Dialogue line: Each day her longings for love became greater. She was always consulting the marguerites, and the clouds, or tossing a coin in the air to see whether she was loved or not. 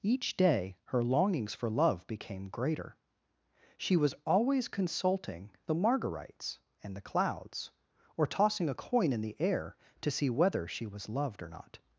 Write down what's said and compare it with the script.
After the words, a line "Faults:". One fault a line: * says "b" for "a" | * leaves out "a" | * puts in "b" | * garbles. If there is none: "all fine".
Each day her longings for love became greater. She was always consulting the marguerites, and the clouds, or tossing a coin in the air to see whether she was loved or not.
Faults:
all fine